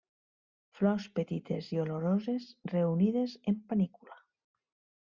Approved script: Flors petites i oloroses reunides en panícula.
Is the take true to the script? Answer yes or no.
yes